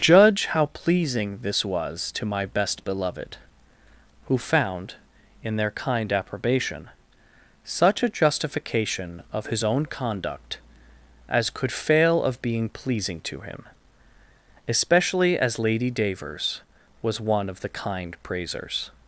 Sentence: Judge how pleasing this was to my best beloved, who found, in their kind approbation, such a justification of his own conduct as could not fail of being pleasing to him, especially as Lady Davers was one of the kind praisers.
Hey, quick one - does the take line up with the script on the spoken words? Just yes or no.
no